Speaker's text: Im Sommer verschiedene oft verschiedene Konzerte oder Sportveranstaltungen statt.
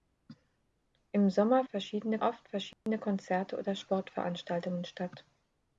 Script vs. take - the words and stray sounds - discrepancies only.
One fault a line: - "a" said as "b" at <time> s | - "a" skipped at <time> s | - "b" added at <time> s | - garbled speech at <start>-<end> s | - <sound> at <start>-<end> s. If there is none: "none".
- dropout at 2.7-2.9 s